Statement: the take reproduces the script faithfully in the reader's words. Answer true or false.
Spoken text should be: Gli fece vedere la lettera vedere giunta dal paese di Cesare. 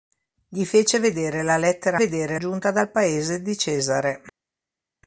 true